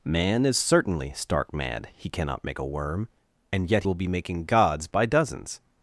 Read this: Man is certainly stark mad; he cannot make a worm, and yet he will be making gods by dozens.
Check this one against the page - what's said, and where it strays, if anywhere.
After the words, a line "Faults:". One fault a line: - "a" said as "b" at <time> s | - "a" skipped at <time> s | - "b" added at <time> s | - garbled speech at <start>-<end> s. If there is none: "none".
Man is certainly stark mad; he cannot make a worm, and yet will be making gods by dozens.
Faults:
- "he" skipped at 3.8 s